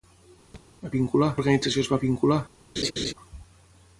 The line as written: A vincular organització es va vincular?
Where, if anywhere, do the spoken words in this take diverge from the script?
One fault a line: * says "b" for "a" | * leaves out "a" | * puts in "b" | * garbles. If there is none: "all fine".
all fine